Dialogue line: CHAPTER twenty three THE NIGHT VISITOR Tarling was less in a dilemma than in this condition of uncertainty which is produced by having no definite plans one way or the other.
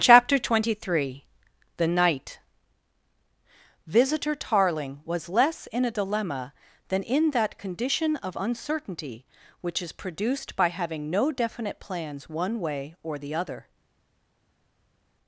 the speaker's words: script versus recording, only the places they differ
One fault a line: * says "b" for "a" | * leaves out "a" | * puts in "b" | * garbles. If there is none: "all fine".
* says "that" for "this"